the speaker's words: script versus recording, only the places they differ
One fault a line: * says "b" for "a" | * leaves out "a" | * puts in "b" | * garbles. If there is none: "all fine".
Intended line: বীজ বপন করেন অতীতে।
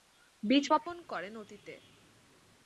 all fine